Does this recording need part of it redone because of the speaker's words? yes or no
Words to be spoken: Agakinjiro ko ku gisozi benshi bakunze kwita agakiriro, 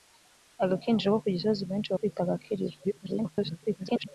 yes